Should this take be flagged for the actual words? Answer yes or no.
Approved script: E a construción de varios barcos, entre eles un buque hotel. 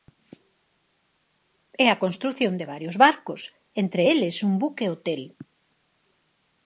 no